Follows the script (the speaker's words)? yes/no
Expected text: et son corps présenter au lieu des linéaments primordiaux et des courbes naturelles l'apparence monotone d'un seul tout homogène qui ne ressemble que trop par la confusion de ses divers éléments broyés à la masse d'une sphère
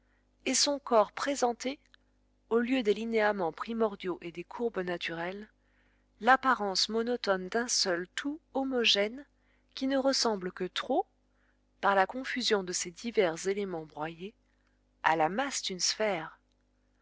yes